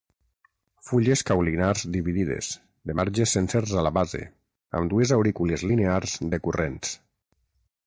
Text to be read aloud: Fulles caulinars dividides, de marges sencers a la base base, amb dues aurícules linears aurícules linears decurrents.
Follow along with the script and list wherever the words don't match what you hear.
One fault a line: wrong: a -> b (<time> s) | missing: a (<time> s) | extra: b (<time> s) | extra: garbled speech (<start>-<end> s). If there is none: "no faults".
missing: base (4.2 s)
missing: aurícules linears (6.2 s)